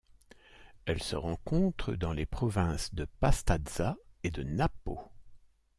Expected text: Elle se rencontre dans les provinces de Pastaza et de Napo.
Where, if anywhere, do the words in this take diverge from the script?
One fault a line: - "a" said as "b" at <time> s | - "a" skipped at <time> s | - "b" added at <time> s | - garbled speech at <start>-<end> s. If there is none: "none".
none